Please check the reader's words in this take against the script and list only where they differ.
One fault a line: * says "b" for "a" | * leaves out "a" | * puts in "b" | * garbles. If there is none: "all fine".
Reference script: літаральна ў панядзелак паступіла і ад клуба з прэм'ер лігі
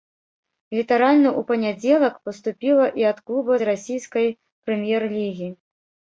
* puts in "расійскай"